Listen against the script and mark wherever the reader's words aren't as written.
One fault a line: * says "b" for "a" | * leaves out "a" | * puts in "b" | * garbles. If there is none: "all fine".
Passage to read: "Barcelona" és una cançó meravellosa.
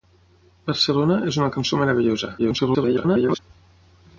* garbles